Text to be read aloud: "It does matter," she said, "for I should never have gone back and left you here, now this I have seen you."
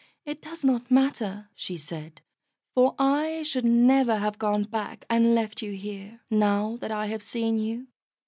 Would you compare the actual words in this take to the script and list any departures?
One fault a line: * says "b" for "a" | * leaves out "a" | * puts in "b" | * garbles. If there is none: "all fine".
* puts in "not"
* says "that" for "this"